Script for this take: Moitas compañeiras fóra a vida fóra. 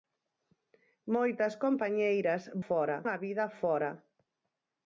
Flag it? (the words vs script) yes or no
no